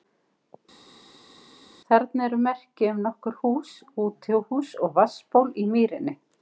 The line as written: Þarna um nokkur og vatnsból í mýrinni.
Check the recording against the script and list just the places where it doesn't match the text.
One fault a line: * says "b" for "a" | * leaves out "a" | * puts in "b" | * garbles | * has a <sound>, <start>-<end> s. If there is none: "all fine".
* puts in "eru merki"
* puts in "hús útihús"